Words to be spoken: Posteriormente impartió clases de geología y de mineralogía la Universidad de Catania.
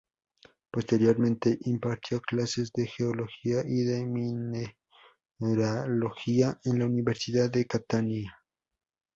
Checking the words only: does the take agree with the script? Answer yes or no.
no